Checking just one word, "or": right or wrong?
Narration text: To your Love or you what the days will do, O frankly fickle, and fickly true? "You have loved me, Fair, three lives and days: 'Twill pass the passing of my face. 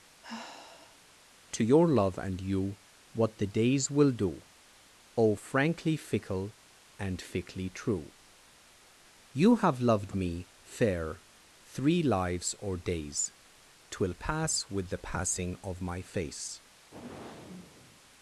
wrong